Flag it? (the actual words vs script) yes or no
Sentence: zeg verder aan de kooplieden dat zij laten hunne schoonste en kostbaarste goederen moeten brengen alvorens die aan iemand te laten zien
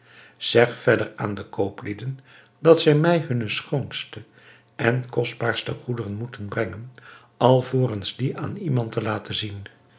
yes